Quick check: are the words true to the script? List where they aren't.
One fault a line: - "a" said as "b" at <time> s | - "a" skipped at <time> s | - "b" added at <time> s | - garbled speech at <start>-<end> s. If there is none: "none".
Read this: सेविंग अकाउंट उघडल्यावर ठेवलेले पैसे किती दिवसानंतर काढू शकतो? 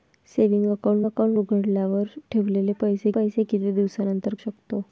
- "अकाउंट" added at 1.1 s
- "पैसे" added at 3.1 s
- "काढू" skipped at 4.3 s